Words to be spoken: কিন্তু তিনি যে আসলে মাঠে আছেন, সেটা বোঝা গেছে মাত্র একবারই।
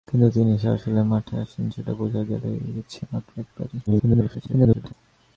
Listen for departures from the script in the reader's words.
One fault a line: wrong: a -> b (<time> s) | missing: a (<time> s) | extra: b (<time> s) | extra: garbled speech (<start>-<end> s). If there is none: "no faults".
extra: garbled speech (3.9-4.9 s)